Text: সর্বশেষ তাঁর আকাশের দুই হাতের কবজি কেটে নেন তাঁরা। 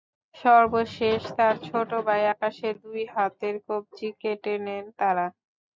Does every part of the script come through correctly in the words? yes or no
no